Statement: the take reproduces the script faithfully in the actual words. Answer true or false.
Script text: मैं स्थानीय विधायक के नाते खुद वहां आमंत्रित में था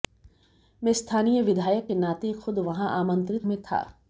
true